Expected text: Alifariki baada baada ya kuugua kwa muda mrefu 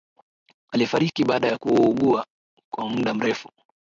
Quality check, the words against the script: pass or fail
fail